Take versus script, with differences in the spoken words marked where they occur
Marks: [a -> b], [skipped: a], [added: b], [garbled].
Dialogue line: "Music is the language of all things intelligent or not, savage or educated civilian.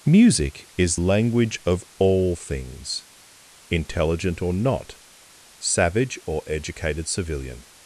"Music is [skipped: the] language of all things intelligent or not, savage or educated civilian.